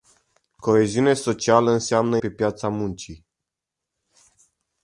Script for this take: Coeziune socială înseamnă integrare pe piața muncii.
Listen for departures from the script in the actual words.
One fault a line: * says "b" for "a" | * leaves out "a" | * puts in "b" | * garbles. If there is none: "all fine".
* leaves out "integrare"